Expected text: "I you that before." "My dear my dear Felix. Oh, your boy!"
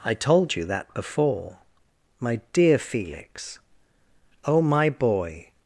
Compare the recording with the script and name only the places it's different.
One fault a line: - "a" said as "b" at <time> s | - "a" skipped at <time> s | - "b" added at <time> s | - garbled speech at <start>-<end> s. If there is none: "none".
- "told" added at 0.1 s
- "my dear" skipped at 2.8 s
- "your" said as "my" at 4.6 s